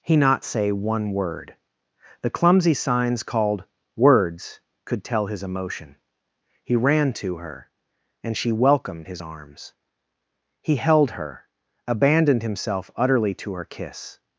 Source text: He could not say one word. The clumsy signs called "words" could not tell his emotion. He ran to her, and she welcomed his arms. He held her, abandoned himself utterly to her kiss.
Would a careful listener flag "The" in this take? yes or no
no